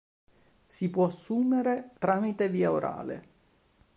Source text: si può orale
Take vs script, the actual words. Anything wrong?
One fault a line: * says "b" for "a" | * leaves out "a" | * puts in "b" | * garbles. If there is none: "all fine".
* puts in "assumere tramite via"